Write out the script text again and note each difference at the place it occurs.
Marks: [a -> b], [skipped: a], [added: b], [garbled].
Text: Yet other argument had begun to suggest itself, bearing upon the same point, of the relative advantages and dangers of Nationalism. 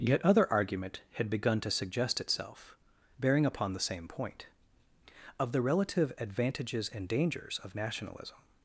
Yet other argument had begun to suggest itself, bearing upon the same point, of the relative advantages and dangers of Nationalism.